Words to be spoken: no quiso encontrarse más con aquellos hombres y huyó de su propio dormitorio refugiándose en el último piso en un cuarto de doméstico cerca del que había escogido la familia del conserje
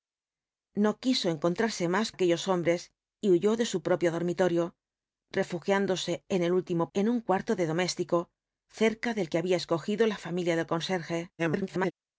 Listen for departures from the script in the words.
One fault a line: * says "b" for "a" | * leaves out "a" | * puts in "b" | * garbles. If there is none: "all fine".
* leaves out "con"
* leaves out "piso"
* garbles